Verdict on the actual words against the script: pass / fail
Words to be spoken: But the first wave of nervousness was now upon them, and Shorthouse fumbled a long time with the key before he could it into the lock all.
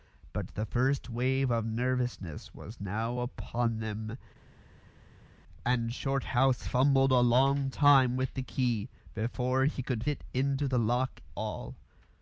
pass